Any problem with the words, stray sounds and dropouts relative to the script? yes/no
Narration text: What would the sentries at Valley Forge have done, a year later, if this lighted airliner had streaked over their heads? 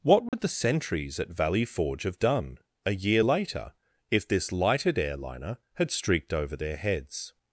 yes